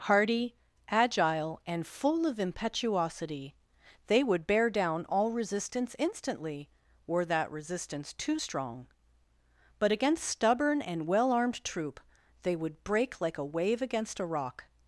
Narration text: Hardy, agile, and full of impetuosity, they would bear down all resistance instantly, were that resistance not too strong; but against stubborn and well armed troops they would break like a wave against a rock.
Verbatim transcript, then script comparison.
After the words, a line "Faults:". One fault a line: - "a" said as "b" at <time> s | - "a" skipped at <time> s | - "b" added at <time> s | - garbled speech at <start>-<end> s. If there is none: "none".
Hardy, agile, and full of impetuosity, they would bear down all resistance instantly, were that resistance too strong; but against stubborn and well armed troop they would break like a wave against a rock.
Faults:
- "not" skipped at 8.1 s
- "troops" said as "troop" at 11.6 s